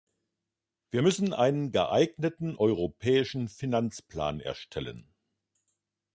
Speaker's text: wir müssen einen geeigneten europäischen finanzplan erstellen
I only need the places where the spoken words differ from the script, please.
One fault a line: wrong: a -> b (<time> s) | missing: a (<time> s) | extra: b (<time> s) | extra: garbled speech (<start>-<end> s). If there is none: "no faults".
no faults